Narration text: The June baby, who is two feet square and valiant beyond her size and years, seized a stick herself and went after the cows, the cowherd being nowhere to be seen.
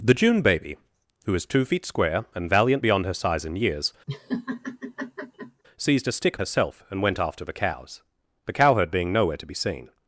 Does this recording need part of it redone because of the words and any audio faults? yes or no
yes